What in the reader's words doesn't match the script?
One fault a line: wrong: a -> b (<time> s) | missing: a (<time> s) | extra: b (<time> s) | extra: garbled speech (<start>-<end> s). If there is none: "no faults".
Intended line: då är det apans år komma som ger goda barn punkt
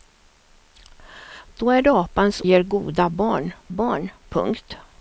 missing: år komma som (2.4 s)
extra: barn (3.7 s)